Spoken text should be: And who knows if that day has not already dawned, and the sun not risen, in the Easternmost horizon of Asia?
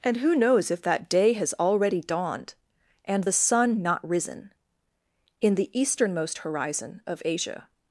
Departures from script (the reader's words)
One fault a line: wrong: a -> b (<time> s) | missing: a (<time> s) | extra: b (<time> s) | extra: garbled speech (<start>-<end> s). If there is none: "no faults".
missing: not (1.5 s)